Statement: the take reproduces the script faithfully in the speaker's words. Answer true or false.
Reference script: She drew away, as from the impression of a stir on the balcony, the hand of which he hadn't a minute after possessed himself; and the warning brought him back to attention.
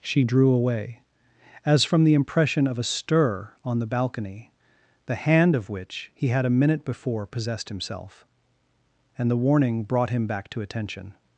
false